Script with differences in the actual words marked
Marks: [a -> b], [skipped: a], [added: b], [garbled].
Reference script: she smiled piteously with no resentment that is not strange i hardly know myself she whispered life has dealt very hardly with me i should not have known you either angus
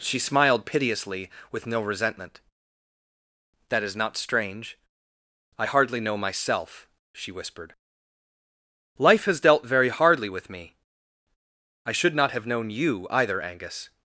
she smiled piteously with no resentment that is not strange i hardly know myself she whispered life has dealt very hardly with me i should not have known you either angus